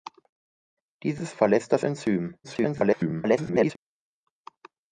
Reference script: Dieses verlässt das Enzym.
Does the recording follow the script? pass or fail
fail